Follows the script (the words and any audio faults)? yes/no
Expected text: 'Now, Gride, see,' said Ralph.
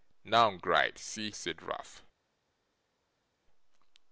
yes